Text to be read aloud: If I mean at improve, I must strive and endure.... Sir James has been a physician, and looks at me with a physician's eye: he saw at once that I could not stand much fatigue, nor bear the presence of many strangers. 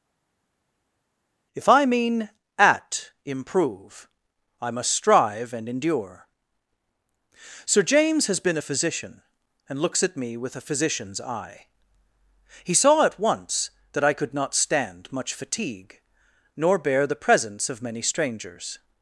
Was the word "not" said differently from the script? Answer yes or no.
no